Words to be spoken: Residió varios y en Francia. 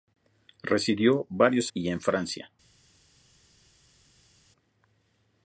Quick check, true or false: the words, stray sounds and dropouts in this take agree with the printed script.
true